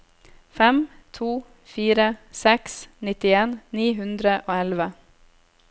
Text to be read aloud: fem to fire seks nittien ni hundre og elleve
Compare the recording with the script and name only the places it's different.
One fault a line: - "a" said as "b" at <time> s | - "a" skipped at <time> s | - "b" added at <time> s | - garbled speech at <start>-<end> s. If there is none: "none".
none